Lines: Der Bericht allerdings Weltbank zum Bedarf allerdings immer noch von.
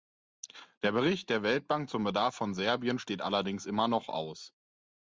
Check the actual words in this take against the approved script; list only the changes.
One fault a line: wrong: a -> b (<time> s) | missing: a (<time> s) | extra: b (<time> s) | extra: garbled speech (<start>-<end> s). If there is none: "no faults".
wrong: allerdings -> der (1.3 s)
extra: von Serbien steht (2.3 s)
wrong: von -> aus (4.1 s)